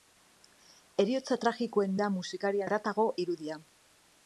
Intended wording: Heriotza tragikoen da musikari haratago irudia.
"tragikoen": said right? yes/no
yes